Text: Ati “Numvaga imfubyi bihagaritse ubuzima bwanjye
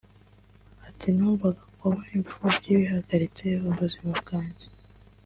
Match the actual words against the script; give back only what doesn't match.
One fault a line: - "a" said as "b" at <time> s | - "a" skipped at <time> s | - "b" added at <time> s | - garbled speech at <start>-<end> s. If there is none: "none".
- "kuba" added at 1.8 s